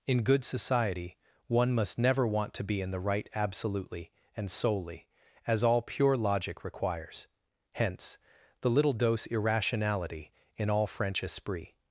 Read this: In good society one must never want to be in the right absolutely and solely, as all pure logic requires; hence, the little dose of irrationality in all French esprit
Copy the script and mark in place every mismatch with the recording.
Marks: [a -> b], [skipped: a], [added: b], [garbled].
In good society one must never want to be in the right absolutely and solely, as all pure logic requires; hence, the little dose [skipped: of] irrationality in all French esprit